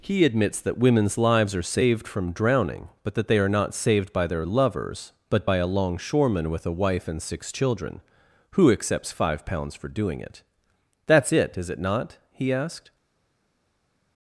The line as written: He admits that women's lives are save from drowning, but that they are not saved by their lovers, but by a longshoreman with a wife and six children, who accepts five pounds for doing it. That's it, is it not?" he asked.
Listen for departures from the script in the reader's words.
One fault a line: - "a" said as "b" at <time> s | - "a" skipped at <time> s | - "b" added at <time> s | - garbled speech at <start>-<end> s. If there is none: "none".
- "save" said as "saved" at 1.6 s